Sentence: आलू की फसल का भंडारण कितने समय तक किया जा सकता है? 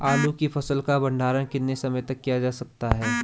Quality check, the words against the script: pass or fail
pass